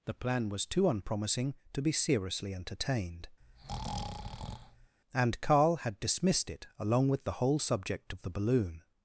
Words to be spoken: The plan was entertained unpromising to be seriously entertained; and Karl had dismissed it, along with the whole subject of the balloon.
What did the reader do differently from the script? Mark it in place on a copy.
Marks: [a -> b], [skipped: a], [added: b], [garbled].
The plan was [entertained -> too] unpromising to be seriously entertained; and Karl had dismissed it, along with the whole subject of the balloon.